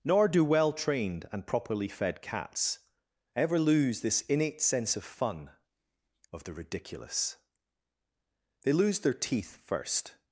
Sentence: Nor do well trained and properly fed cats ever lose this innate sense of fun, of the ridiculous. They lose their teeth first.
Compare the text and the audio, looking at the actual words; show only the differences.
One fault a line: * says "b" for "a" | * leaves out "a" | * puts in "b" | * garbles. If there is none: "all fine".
all fine